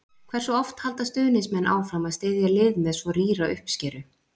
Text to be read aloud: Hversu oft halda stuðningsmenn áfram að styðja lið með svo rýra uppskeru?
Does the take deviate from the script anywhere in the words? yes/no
no